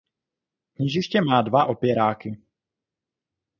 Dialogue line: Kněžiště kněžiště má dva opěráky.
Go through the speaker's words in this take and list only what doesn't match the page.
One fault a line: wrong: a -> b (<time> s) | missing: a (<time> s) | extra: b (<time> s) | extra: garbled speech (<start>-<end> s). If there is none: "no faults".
missing: kněžiště (1.2 s)